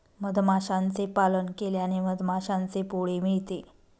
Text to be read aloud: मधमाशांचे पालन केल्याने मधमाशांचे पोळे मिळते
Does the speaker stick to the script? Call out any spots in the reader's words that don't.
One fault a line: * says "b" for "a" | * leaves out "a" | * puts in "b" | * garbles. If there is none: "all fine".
all fine